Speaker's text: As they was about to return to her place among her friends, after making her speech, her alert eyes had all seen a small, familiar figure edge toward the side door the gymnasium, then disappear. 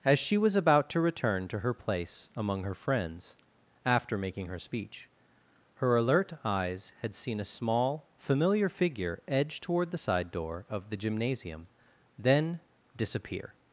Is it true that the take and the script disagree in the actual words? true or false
true